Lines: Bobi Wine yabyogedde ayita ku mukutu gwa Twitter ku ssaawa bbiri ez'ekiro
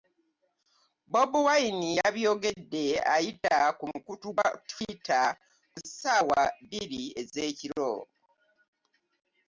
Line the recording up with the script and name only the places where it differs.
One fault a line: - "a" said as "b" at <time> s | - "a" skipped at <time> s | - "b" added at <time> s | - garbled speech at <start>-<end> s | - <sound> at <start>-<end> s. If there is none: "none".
none